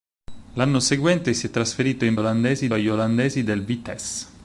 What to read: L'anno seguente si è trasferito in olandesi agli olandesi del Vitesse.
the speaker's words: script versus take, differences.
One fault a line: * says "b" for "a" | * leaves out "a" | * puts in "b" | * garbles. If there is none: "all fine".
all fine